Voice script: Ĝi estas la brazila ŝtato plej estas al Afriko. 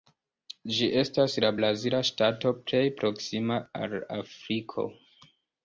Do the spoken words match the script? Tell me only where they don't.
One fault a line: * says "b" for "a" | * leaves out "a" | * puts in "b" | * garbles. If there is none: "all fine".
* says "proksima" for "estas"